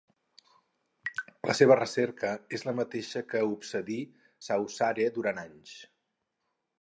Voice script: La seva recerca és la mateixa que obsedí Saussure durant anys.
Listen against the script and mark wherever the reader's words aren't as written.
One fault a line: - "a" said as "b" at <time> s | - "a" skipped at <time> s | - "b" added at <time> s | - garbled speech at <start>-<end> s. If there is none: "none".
none